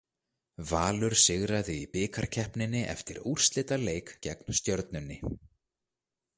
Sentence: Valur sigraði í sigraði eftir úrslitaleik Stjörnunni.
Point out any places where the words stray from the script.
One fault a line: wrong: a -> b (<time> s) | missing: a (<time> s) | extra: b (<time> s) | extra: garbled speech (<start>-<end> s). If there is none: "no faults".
wrong: sigraði -> bikarkeppninni (2.0 s)
extra: gegn (4.3 s)